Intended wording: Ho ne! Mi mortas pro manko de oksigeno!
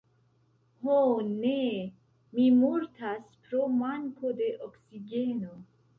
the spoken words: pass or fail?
pass